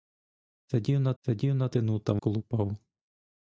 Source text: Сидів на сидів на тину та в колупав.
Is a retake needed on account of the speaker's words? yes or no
no